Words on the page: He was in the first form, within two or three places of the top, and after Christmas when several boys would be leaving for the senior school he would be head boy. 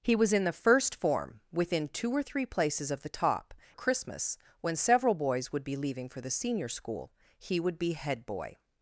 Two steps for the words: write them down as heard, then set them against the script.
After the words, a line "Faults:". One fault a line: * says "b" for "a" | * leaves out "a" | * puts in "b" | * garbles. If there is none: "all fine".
He was in the first form, within two or three places of the top, Christmas when several boys would be leaving for the senior school he would be head boy.
Faults:
* leaves out "and after"